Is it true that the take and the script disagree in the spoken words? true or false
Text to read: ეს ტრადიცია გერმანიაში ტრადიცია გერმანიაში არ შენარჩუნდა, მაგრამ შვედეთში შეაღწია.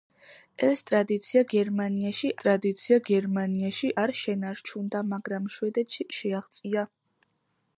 false